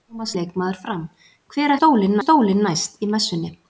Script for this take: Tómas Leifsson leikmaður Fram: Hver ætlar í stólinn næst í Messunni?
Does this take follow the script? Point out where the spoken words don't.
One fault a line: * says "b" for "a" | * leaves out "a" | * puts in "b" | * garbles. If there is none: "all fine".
* leaves out "Leifsson"
* says "stólinn" for "ætlar"